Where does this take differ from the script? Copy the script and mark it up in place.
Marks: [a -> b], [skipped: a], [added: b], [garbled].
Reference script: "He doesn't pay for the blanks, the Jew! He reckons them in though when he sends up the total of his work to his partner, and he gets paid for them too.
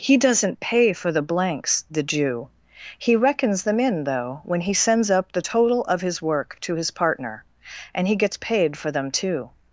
"He doesn't pay for the blanks, the Jew! He reckons them in though when he sends up the total of his work to his partner, and he gets paid for them too.